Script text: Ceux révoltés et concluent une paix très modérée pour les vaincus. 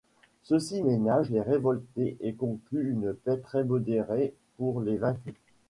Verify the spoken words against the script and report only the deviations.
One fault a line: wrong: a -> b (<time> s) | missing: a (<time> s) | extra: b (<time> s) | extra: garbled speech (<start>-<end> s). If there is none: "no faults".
extra: ci ménagent les (0.6 s)